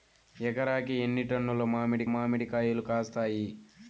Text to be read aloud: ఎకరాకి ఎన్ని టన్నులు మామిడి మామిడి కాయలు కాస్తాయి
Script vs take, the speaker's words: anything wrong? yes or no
no